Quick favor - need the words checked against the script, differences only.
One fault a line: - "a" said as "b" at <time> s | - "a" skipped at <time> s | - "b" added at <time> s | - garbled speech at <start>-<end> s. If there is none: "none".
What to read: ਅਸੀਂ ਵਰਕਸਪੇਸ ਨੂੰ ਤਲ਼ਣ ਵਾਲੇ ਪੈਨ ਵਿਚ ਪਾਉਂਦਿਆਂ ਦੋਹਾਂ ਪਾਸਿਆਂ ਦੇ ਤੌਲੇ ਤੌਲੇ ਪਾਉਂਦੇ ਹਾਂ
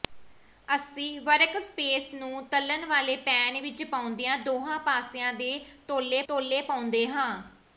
none